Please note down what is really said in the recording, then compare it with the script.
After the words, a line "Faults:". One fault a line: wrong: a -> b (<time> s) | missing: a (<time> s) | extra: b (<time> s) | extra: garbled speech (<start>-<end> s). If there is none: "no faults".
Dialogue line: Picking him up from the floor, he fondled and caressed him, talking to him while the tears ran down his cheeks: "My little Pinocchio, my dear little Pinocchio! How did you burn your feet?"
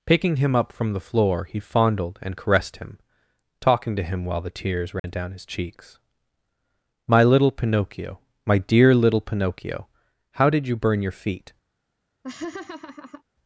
Picking him up from the floor, he fondled and caressed him, talking to him while the tears ran down his cheeks: "My little Pinocchio, my dear little Pinocchio! How did you burn your feet?"
Faults:
no faults